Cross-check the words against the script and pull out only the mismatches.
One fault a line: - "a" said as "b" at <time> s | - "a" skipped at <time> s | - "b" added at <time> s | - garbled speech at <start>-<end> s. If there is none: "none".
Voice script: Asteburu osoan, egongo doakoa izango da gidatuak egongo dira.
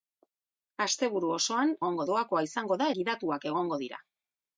none